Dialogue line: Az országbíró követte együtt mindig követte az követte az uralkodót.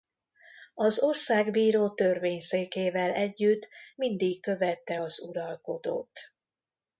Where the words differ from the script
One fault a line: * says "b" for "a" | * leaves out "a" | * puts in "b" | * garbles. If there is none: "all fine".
* says "törvényszékével" for "követte"
* leaves out "követte az"